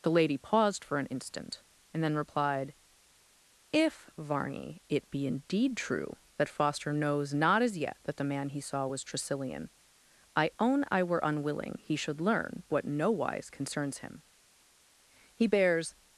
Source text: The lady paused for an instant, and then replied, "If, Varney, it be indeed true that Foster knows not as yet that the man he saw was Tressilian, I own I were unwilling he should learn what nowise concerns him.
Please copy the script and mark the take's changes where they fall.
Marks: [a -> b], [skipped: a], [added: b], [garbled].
The lady paused for an instant, and then replied, "If, Varney, it be indeed true that Foster knows not as yet that the man he saw was Tressilian, I own I were unwilling he should learn what nowise concerns him. [added: He bears]